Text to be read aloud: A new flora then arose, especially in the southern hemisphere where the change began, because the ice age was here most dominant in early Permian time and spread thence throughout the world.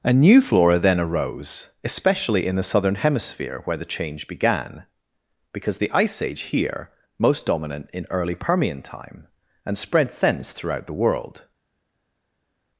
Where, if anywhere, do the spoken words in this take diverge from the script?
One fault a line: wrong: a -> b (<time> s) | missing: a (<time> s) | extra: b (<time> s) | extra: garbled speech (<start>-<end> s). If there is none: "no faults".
missing: was (6.4 s)